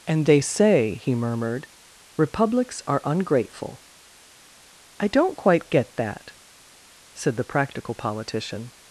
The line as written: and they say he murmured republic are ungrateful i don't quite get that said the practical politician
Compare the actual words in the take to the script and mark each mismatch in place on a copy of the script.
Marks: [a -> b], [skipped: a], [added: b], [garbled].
and they say he murmured [republic -> republics] are ungrateful i don't quite get that said the practical politician